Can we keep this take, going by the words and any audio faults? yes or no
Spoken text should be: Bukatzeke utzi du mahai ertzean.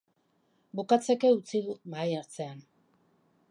yes